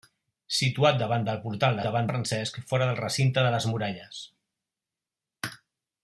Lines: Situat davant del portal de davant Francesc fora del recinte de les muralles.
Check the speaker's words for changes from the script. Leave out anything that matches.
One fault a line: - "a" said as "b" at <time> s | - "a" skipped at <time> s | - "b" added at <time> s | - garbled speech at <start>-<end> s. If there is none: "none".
none